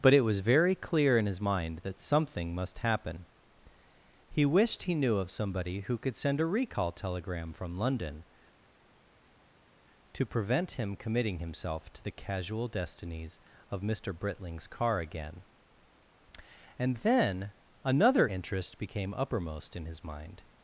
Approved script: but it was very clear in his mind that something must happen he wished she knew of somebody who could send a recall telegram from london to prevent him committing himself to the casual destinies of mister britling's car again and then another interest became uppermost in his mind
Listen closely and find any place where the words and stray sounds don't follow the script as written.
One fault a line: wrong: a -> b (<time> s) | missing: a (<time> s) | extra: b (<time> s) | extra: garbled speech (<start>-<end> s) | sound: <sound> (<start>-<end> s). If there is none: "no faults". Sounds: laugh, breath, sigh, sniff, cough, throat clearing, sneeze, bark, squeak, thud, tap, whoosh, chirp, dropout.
wrong: she -> he (4.8 s)